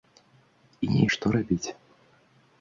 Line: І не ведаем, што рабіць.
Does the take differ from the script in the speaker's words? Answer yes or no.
yes